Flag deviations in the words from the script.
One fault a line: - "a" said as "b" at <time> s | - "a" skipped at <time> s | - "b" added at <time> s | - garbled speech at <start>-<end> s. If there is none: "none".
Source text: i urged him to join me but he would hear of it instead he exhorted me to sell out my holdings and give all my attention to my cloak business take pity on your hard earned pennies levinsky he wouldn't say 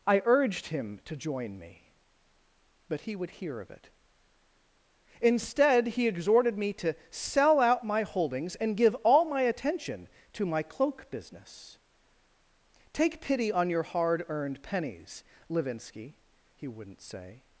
none